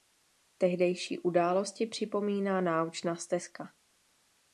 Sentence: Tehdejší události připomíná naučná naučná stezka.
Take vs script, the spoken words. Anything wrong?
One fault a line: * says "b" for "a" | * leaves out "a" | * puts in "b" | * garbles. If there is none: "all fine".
* leaves out "naučná"